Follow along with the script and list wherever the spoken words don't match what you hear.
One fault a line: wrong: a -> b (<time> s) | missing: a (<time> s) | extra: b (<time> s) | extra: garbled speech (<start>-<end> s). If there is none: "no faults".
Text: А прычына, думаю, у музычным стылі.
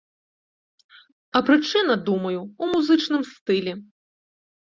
no faults